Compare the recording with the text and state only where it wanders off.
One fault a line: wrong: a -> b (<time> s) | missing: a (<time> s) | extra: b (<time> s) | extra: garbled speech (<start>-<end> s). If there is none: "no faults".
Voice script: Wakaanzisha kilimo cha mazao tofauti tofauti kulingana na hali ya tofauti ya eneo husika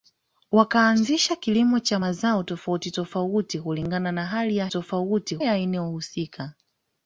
no faults